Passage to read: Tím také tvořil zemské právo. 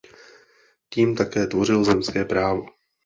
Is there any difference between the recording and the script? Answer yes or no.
no